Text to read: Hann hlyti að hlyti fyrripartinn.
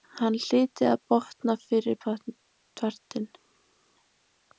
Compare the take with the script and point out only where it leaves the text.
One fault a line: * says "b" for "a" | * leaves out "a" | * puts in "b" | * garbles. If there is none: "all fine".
* says "botna" for "hlyti"